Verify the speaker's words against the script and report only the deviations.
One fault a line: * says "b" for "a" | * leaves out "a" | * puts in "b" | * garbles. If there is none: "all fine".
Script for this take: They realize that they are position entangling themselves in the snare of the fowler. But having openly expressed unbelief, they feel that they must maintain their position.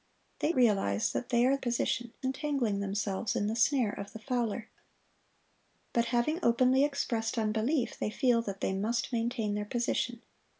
all fine